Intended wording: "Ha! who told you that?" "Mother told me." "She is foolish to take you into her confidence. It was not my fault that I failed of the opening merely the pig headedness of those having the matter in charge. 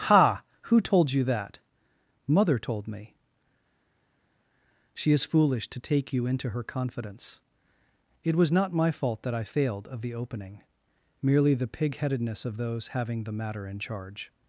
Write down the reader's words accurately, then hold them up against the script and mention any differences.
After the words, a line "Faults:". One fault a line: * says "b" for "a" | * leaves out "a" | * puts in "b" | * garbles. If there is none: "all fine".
"Ha! who told you that?" "Mother told me." "She is foolish to take you into her confidence. It was not my fault that I failed of the opening merely the pig headedness of those having the matter in charge.
Faults:
all fine